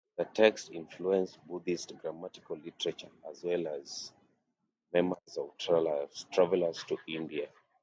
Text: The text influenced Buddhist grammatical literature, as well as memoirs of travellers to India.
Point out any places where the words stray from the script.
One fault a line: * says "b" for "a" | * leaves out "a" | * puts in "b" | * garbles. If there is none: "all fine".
all fine